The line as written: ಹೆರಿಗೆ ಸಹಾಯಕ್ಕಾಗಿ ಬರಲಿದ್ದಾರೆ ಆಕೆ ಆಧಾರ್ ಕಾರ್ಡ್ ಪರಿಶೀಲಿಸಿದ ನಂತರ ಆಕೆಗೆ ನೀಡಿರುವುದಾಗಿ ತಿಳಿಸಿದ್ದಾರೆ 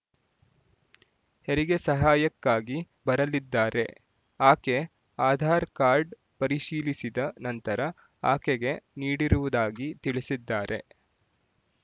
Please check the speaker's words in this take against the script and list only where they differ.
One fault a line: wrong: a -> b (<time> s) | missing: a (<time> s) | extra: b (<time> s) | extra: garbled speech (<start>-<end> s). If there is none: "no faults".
no faults